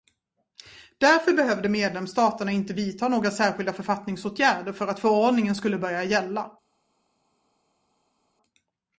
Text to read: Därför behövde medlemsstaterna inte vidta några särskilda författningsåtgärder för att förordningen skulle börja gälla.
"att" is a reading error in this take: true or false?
false